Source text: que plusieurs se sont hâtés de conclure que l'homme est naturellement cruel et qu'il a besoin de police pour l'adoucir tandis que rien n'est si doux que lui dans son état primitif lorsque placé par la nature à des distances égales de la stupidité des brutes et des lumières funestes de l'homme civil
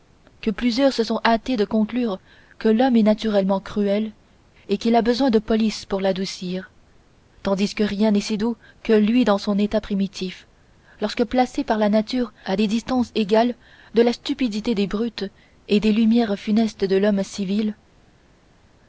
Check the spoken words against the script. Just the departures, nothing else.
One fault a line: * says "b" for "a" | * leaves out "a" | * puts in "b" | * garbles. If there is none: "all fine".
all fine